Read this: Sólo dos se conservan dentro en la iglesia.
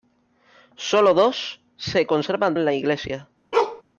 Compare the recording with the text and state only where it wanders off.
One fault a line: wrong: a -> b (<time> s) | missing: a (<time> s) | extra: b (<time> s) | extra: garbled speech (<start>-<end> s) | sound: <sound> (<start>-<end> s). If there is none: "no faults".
missing: dentro (2.5 s)
sound: bark (3.5-3.8 s)